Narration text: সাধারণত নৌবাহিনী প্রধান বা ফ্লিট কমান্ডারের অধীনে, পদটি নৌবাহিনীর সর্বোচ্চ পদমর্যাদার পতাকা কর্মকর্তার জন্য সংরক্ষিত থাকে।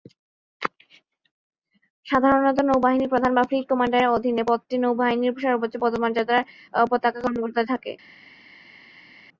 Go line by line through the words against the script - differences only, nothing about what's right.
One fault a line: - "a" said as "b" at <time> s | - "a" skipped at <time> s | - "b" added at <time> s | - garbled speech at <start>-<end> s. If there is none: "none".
- "জন্য সংরক্ষিত" skipped at 7.7 s